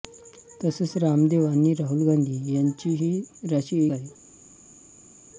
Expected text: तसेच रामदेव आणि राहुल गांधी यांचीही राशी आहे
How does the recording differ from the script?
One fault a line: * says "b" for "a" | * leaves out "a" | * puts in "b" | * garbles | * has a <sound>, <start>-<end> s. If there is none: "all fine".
all fine